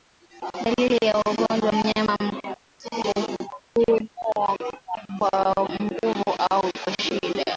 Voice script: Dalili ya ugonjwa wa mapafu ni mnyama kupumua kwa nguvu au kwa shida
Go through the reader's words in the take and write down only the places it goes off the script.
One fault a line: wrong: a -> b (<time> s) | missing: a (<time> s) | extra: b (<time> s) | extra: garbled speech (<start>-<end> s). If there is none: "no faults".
missing: wa mapafu ni (1.7 s)